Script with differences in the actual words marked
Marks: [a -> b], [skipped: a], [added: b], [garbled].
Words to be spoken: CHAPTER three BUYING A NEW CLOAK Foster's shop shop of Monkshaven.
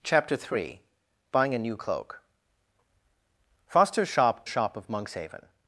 CHAPTER three BUYING A NEW CLOAK Foster's shop shop of Monkshaven.